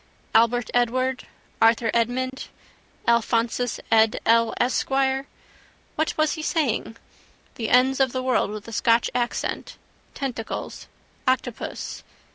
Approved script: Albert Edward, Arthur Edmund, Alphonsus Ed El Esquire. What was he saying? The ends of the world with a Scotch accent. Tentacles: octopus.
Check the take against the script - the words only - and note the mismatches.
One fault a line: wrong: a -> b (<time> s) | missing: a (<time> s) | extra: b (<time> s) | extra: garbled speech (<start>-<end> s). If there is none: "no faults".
no faults